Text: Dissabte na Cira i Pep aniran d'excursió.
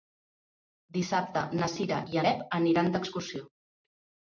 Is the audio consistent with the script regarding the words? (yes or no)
yes